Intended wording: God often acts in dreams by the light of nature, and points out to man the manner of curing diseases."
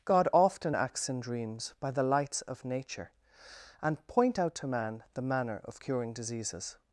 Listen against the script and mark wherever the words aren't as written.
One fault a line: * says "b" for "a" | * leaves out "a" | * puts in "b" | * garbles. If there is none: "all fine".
* says "lights" for "light"
* says "point" for "points"